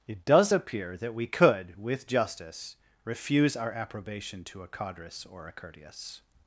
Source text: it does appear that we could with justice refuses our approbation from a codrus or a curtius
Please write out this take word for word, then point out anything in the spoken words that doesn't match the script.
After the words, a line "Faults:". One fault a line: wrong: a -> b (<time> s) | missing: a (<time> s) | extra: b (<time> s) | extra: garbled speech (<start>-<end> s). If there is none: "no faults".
it does appear that we could with justice refuse our approbation to a codrus or a curtius
Faults:
wrong: refuses -> refuse (3.0 s)
wrong: from -> to (4.4 s)